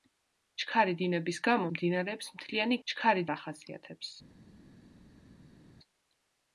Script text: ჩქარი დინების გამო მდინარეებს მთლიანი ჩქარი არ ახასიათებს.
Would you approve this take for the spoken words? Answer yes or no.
yes